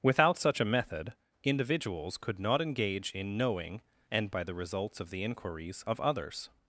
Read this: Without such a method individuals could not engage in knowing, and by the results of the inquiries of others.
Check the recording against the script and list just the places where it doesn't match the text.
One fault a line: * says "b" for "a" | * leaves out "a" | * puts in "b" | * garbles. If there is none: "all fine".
all fine